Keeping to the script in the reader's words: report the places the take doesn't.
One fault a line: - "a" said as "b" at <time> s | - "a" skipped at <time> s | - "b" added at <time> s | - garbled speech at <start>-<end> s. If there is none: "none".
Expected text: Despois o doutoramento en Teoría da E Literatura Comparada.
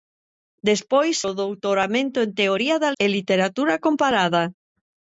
none